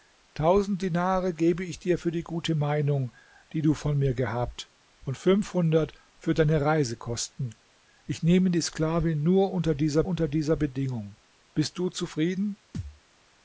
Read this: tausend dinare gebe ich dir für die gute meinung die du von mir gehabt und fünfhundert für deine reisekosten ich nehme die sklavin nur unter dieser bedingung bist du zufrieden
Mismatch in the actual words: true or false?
true